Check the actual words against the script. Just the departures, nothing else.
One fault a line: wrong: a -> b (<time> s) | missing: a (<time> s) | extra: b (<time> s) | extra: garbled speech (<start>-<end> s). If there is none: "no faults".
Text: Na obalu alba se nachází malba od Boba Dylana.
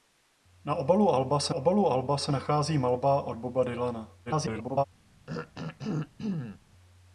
extra: obalu alba se (1.5 s)
extra: garbled speech (4.3-4.8 s)